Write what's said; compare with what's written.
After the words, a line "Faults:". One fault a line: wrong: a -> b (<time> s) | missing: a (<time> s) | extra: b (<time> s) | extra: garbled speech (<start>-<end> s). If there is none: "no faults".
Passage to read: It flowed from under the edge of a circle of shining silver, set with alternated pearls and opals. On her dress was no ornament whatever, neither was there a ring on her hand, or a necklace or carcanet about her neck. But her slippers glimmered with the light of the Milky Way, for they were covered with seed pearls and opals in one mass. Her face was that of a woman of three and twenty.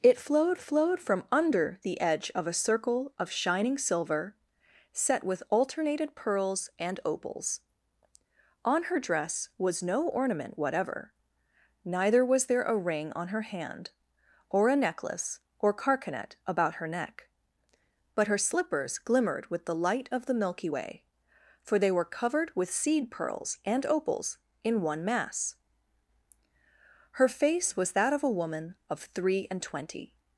It flowed flowed from under the edge of a circle of shining silver, set with alternated pearls and opals. On her dress was no ornament whatever, neither was there a ring on her hand, or a necklace or carcanet about her neck. But her slippers glimmered with the light of the Milky Way, for they were covered with seed pearls and opals in one mass. Her face was that of a woman of three and twenty.
Faults:
extra: flowed (0.6 s)